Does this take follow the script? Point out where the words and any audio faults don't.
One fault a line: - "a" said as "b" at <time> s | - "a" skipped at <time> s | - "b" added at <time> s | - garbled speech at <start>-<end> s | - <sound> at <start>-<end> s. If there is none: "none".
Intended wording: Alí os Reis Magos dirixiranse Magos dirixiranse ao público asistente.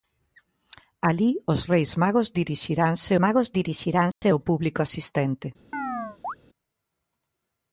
- dropout at 4.1-4.2 s
- chirp at 5.7-6.3 s